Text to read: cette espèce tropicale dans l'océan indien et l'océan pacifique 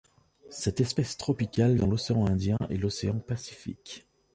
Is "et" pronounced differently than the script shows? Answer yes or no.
no